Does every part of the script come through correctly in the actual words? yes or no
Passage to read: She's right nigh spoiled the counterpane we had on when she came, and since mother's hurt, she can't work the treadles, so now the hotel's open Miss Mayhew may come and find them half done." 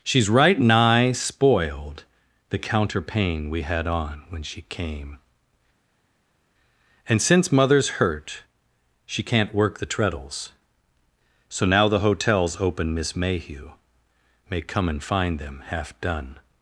yes